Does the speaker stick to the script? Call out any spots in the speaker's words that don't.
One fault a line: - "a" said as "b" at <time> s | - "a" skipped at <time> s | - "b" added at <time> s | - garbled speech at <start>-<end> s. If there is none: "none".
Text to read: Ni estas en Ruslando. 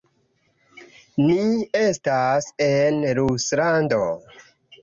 none